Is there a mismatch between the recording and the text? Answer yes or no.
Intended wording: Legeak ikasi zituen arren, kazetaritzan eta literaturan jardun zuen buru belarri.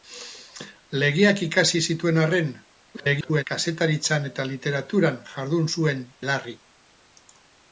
yes